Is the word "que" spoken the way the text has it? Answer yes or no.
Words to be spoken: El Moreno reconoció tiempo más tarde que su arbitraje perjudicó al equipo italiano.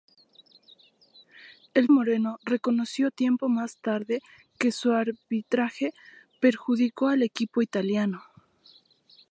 yes